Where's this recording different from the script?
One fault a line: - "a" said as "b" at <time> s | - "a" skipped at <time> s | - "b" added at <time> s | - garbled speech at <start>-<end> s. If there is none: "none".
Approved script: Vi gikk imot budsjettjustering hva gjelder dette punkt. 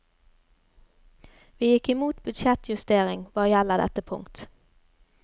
none